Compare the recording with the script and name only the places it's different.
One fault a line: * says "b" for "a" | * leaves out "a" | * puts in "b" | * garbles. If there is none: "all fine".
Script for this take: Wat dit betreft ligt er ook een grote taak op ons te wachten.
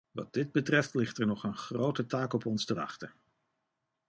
* says "nog" for "ook"